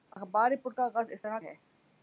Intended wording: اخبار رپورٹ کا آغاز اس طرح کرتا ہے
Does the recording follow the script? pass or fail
fail